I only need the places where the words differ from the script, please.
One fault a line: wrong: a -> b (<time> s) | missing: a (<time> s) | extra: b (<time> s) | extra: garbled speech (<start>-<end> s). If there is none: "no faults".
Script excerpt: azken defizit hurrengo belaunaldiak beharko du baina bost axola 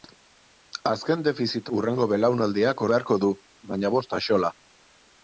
no faults